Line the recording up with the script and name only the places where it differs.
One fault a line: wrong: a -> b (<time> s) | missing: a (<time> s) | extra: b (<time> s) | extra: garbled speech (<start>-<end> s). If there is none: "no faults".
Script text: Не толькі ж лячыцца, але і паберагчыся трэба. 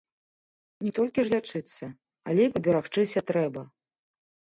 no faults